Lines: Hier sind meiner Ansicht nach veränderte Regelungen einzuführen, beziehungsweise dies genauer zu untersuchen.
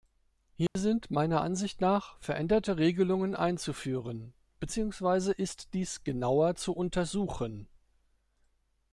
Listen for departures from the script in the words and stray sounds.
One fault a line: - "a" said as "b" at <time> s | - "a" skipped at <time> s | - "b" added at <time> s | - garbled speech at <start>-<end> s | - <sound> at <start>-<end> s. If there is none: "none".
- dropout at 0.7-0.8 s
- "ist" added at 5.3 s